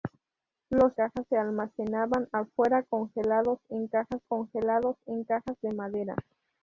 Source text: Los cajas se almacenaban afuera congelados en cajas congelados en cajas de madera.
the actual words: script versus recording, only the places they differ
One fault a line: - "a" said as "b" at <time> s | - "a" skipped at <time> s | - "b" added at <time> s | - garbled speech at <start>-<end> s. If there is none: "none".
none